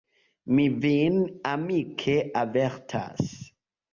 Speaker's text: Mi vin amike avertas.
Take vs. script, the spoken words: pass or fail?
pass